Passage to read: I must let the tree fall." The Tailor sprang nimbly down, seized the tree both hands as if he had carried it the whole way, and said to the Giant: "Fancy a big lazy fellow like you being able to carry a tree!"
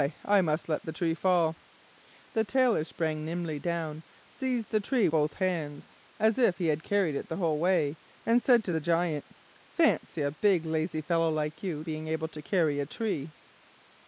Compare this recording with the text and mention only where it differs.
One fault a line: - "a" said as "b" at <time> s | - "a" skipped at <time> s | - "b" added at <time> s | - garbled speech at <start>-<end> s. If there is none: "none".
none